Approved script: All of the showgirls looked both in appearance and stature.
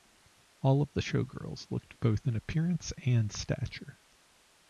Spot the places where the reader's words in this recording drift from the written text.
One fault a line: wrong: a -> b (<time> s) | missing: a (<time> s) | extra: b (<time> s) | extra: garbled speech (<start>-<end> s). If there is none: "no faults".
no faults